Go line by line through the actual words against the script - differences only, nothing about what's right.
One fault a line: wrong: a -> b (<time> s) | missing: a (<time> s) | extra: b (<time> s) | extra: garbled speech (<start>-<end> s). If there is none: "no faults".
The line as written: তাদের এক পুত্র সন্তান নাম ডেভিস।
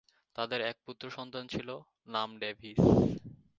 extra: ছিল (1.5 s)